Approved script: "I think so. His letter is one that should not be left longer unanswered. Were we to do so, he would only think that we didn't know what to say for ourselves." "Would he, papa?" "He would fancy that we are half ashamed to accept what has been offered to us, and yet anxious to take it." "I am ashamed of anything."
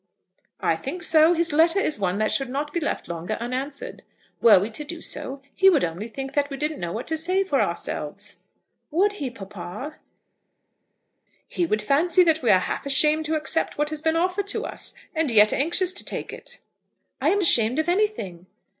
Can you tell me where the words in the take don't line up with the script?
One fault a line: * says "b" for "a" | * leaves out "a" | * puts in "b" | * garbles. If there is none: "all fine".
all fine